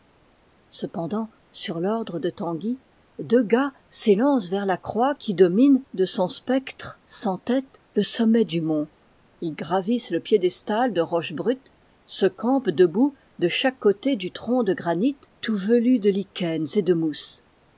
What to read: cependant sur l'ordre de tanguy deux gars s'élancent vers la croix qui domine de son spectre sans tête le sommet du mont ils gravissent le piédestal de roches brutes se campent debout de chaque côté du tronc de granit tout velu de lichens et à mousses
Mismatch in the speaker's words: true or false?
true